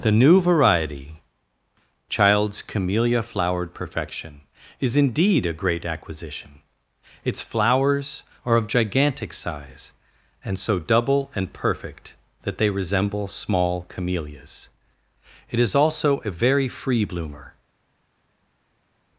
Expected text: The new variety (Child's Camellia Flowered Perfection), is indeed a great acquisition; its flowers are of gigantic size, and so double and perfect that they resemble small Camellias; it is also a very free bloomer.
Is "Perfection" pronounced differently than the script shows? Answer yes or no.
no